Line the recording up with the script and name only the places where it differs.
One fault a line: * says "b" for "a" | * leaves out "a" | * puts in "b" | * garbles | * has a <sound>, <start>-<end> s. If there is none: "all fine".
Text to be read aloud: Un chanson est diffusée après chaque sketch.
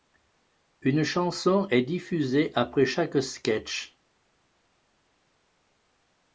* says "Une" for "Un"